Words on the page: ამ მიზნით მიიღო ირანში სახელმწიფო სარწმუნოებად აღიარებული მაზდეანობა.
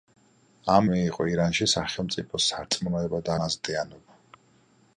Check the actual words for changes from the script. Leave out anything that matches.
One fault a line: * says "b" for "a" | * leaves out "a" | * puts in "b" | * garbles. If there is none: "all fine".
* leaves out "მიზნით"
* leaves out "აღიარებული"